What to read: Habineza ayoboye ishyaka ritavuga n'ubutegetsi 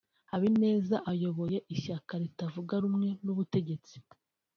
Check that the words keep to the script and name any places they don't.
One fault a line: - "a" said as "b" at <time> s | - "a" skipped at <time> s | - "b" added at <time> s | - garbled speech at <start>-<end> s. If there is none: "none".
- "rumwe" added at 2.8 s